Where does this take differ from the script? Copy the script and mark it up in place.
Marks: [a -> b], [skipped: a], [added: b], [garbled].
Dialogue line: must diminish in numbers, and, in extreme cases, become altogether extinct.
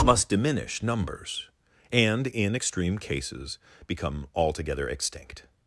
must diminish [skipped: in] numbers, and, in extreme cases, become altogether extinct.